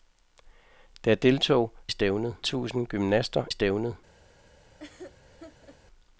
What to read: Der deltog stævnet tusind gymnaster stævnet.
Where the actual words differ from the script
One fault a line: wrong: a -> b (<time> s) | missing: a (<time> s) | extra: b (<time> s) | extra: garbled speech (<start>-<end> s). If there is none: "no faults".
no faults